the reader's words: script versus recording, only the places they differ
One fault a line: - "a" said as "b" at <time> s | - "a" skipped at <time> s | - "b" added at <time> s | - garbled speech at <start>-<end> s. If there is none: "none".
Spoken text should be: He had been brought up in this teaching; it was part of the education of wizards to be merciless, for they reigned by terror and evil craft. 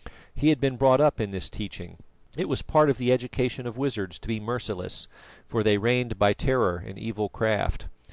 none